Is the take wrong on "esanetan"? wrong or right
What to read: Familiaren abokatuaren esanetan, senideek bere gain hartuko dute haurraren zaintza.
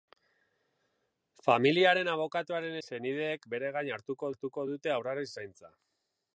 wrong